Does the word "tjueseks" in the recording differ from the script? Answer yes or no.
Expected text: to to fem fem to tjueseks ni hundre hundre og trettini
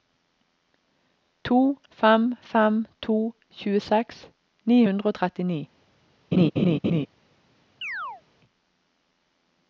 no